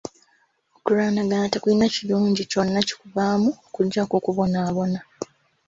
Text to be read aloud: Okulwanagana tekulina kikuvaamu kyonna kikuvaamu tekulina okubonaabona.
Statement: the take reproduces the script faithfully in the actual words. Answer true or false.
false